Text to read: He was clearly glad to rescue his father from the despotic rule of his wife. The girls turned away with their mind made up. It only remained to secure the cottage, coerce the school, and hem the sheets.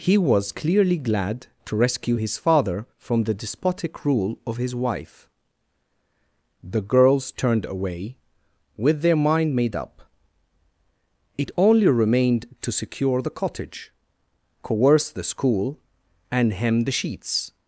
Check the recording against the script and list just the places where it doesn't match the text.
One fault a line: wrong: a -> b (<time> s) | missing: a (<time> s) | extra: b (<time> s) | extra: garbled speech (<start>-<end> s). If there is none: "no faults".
no faults